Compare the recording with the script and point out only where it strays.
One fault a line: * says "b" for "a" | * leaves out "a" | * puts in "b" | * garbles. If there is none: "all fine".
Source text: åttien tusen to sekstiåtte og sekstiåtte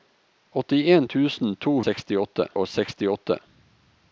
all fine